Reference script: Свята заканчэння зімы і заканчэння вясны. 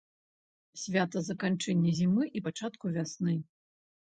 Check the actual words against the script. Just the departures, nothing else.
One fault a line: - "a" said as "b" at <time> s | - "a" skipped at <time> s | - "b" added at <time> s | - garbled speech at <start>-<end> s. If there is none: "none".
- "заканчэння" said as "пачатку" at 2.5 s